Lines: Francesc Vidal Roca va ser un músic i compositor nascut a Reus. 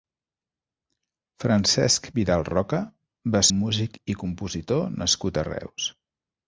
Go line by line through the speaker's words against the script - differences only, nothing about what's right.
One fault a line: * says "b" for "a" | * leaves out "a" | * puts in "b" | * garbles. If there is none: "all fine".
* leaves out "ser"